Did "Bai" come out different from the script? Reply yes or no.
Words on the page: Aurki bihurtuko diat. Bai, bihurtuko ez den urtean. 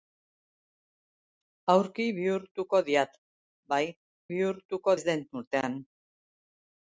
no